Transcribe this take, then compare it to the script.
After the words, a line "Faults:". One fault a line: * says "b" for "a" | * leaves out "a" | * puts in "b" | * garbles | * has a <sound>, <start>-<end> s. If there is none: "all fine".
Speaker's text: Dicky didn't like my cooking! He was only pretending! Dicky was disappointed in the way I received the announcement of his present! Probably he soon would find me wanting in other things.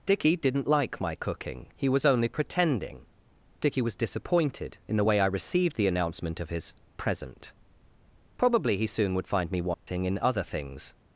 Dicky didn't like my cooking! He was only pretending! Dicky was disappointed in the way I received the announcement of his present! Probably he soon would find me wanting in other things.
Faults:
* has a dropout, 9.7-9.9 s